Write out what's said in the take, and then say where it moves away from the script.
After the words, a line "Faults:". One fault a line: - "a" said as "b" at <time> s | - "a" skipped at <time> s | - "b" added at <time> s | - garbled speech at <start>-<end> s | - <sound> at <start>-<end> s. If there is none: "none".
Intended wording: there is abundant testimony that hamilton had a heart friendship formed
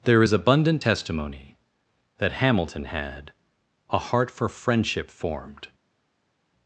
there is abundant testimony that hamilton had a heart for friendship formed
Faults:
- "for" added at 4.3 s